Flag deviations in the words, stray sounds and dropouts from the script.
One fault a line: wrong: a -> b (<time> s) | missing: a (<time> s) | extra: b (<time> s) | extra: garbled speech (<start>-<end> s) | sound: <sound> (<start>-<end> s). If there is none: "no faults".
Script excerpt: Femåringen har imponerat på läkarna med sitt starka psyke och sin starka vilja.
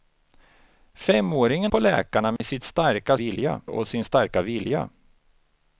missing: har imponerat (1.7 s)
sound: dropout (2.4-2.4 s)
wrong: psyke -> vilja (3.1 s)